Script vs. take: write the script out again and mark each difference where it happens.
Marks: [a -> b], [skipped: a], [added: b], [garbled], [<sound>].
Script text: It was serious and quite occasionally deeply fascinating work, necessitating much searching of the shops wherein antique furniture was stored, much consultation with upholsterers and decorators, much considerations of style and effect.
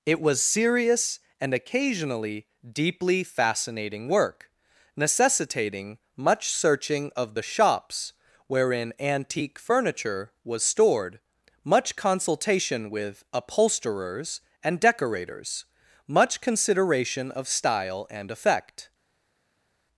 It was serious and [skipped: quite] occasionally deeply fascinating work, necessitating much searching of the shops wherein antique furniture was stored, much consultation with upholsterers and decorators, much [considerations -> consideration] of style and effect.